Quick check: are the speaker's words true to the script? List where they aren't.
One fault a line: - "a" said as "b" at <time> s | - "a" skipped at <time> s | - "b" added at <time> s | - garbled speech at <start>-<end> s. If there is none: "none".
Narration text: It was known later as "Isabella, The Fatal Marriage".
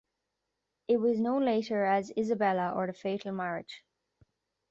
- "or" added at 2.8 s